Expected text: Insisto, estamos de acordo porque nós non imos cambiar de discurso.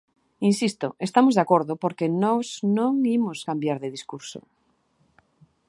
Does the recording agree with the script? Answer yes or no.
yes